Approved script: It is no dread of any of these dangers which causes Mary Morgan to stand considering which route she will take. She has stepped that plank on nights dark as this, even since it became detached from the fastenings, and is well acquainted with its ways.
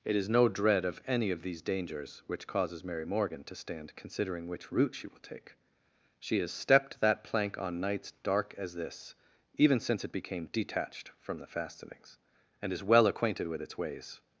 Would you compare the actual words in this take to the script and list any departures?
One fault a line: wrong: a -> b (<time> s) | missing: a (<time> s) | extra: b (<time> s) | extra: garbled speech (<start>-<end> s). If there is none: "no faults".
no faults